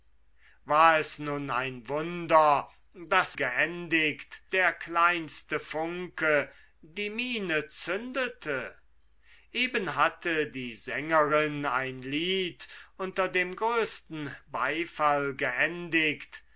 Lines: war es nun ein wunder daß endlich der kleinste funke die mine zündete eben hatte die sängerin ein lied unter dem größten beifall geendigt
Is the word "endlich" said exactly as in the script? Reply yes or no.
no